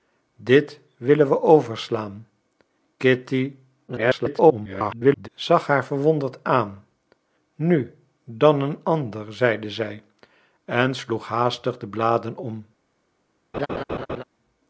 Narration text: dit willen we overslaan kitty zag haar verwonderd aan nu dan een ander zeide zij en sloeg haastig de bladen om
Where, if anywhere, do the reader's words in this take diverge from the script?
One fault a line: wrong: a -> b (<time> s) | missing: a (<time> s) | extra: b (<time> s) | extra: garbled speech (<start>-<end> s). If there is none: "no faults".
extra: garbled speech (3.9-5.3 s)